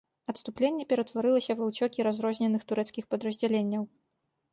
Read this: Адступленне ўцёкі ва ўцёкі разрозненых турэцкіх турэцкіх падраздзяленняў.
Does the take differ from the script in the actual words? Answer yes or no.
yes